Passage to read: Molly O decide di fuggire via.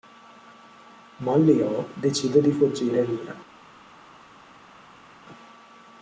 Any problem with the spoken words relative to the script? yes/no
no